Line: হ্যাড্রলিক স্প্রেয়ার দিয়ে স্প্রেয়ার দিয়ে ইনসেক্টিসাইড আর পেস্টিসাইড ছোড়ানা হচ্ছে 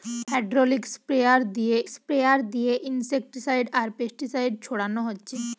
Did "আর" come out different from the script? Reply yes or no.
no